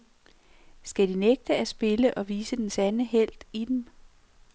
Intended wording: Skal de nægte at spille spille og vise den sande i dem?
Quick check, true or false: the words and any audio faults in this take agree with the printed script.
false